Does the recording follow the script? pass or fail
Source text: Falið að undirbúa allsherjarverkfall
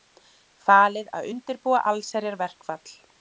pass